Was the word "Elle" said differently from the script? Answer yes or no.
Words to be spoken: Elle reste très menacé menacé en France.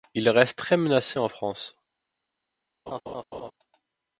yes